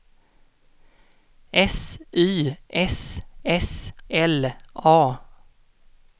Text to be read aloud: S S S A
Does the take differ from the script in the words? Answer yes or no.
yes